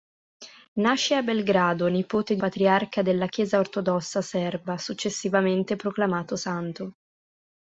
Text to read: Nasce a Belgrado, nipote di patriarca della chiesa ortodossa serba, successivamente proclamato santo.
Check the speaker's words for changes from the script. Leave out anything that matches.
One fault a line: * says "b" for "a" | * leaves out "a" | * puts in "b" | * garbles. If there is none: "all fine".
all fine